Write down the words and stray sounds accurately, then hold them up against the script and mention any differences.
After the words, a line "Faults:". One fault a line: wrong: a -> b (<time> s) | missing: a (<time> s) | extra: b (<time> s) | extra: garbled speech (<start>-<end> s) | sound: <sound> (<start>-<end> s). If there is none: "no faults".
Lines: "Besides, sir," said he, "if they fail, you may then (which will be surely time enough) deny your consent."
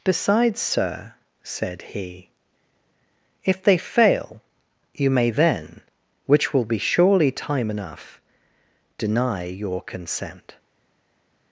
"Besides, sir," said he, "if they fail, you may then (which will be surely time enough) deny your consent."
Faults:
no faults